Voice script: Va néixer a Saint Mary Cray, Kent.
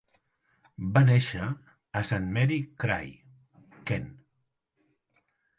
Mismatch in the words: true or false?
false